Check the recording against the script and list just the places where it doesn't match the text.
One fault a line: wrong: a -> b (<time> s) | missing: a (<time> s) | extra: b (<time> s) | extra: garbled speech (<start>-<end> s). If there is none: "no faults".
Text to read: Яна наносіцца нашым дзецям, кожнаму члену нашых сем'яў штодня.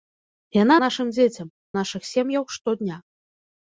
missing: наносіцца (0.8 s)
missing: кожнаму члену (1.5 s)